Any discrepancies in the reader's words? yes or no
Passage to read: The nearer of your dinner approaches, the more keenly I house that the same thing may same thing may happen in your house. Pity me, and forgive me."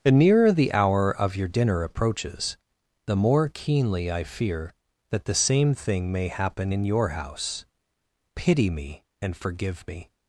yes